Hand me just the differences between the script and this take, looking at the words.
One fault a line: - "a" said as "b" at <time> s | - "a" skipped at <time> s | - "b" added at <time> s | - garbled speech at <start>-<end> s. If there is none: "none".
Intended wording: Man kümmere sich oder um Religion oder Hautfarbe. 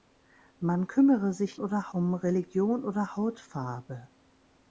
none